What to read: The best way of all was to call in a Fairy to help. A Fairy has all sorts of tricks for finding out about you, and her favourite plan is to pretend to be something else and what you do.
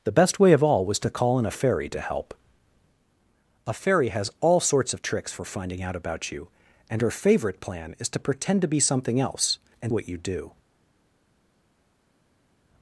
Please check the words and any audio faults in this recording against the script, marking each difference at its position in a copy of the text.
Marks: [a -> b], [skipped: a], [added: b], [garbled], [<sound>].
The best way of all was to call in a Fairy to help. A Fairy has all sorts of tricks for finding out about you, and her favourite plan is to pretend to be something else and what you do.